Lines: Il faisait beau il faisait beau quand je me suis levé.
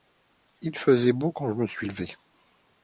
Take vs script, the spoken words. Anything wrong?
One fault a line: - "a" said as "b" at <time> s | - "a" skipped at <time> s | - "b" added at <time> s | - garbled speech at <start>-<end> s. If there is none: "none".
- "il faisait beau" skipped at 1.3 s